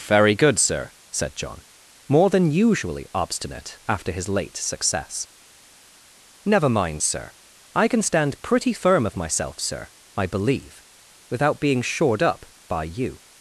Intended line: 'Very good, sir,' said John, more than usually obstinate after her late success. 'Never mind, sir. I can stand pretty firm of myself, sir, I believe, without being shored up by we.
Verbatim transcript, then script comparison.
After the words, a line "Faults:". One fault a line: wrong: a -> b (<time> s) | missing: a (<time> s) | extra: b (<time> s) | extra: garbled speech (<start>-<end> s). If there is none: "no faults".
'Very good, sir,' said John, more than usually obstinate after his late success. 'Never mind, sir. I can stand pretty firm of myself, sir, I believe, without being shored up by you.
Faults:
wrong: her -> his (4.1 s)
wrong: we -> you (12.8 s)